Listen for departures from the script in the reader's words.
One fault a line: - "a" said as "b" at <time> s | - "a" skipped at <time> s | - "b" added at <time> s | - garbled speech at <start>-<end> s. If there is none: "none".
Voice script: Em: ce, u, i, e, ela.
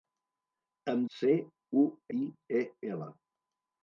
none